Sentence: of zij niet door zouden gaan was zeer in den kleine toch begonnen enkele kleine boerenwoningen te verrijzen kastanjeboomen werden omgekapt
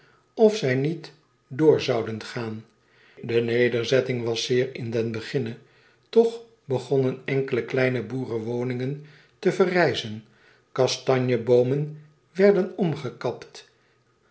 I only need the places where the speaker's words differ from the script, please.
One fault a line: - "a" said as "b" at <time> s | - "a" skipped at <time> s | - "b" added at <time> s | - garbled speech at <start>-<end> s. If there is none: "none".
- "de nederzetting" added at 3.2 s
- "kleine" said as "beginne" at 5.1 s